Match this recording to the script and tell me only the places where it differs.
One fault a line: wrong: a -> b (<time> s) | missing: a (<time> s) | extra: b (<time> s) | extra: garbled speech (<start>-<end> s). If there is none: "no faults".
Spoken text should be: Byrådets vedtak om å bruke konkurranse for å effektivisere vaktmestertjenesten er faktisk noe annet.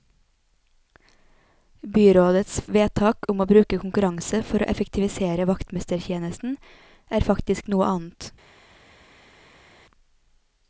no faults